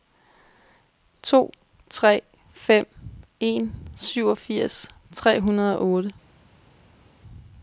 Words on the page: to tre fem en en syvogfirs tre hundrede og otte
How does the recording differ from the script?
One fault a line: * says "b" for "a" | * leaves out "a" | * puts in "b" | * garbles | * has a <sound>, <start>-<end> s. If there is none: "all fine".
* leaves out "en"